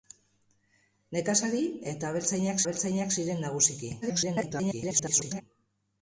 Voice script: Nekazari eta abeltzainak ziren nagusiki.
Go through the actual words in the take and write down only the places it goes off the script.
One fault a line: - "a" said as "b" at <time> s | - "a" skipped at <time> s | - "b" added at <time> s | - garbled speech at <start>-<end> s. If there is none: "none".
- "abeltzainak" added at 2.6 s
- garbled speech at 4.0-5.4 s